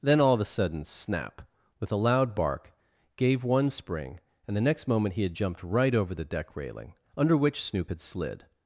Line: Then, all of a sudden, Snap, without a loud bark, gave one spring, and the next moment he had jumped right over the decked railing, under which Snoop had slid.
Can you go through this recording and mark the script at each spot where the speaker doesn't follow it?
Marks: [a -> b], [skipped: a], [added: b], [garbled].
Then, all of a sudden, Snap, [without -> with] a loud bark, gave one spring, and the next moment he had jumped right over the [decked -> deck] railing, under which Snoop had slid.